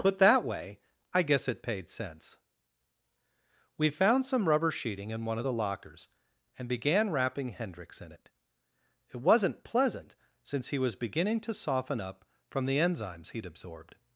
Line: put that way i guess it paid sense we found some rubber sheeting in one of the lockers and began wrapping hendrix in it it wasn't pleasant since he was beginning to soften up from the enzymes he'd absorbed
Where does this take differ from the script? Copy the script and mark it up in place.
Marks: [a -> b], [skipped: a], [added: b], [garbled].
put that way i guess it paid sense we found some rubber sheeting in one of the lockers and began wrapping hendrix in it it wasn't pleasant since he was beginning to soften up from the enzymes he'd absorbed